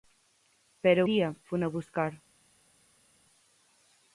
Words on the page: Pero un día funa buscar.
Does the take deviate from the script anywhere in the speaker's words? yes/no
yes